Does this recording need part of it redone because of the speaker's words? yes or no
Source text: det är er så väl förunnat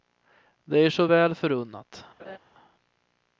no